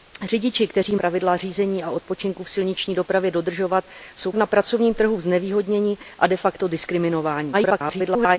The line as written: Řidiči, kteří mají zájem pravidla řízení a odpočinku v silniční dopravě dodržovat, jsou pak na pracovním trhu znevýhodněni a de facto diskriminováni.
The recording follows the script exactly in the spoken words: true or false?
false